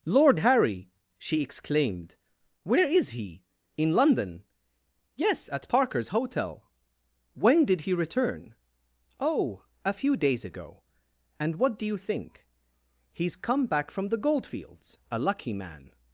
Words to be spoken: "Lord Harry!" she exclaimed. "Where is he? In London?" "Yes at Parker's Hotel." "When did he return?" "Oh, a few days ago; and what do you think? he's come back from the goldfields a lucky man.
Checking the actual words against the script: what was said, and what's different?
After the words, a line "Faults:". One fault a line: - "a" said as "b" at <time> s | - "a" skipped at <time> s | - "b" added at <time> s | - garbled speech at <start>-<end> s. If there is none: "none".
"Lord Harry!" she exclaimed. "Where is he? In London?" "Yes at Parker's Hotel." "When did he return?" "Oh, a few days ago; and what do you think? he's come back from the goldfields a lucky man.
Faults:
none